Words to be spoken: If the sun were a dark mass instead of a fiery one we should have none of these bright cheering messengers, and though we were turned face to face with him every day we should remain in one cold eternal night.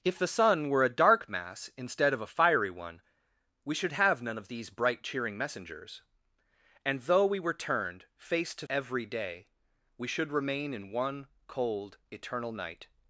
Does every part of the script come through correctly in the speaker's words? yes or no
no